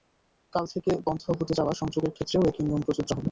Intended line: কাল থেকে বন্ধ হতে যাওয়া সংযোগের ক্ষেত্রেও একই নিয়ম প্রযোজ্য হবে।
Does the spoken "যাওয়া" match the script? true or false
true